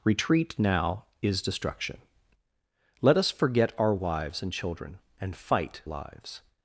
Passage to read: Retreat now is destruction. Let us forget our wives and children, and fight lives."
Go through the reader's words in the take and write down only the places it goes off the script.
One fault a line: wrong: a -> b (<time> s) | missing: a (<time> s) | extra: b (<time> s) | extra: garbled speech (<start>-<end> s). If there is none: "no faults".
no faults